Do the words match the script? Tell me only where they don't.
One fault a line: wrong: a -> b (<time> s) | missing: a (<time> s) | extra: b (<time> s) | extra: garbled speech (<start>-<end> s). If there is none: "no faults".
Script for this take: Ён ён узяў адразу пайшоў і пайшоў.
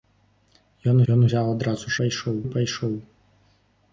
no faults